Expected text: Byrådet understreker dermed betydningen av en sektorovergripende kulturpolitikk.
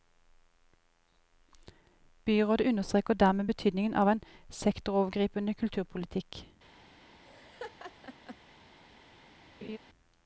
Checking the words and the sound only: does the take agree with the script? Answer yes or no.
no